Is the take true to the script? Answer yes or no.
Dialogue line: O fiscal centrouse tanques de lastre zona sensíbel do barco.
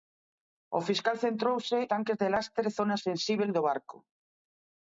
yes